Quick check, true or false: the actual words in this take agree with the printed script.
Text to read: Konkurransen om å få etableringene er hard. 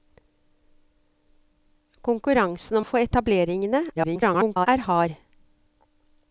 false